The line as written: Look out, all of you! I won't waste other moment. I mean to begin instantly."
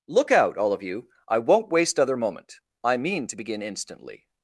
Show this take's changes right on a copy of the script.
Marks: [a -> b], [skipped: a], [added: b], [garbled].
Look out, all of you! I won't waste other moment. I mean to begin instantly."